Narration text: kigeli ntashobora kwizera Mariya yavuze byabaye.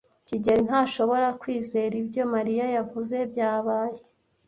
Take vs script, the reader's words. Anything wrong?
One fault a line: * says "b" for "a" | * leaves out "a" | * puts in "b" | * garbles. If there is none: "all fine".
* puts in "ibyo"